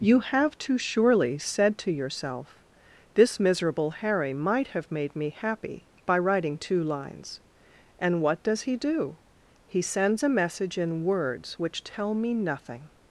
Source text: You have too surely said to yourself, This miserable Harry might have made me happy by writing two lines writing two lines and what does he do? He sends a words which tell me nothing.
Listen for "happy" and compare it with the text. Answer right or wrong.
right